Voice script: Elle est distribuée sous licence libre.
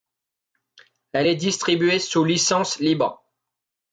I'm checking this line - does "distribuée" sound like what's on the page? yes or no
yes